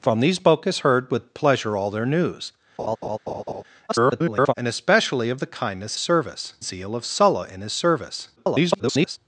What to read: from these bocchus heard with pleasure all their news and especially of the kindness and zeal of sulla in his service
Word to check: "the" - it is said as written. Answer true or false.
true